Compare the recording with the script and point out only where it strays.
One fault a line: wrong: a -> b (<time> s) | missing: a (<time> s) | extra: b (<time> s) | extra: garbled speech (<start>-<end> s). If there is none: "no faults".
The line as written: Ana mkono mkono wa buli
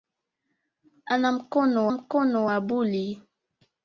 no faults